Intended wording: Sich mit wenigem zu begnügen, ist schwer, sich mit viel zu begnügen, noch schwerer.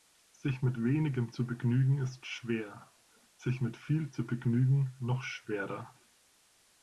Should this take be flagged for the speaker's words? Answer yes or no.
no